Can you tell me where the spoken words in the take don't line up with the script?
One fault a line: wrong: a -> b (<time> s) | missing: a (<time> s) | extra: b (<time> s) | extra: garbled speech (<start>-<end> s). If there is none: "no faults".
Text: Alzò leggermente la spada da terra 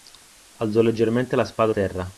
missing: da (1.7 s)